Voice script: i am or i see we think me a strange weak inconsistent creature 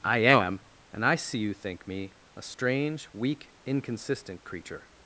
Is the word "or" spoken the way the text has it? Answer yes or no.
no